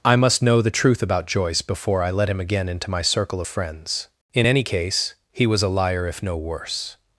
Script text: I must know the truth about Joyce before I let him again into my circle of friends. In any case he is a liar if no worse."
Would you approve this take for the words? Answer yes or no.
no